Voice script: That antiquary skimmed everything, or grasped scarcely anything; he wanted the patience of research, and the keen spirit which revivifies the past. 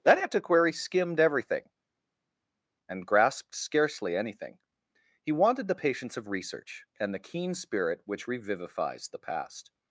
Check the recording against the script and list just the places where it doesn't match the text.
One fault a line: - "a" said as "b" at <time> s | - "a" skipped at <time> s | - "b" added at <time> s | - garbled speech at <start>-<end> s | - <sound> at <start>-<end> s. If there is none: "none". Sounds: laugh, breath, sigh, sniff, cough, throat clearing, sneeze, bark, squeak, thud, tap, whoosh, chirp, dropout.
- "or" said as "and" at 2.9 s